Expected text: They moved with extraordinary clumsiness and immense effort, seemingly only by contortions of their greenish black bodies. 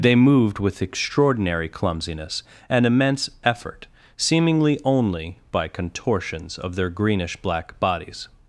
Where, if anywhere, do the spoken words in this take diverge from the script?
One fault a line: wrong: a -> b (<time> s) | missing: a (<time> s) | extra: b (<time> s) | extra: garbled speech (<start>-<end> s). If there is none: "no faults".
no faults